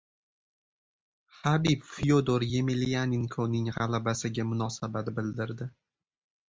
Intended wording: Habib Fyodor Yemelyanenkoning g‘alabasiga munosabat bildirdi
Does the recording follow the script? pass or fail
pass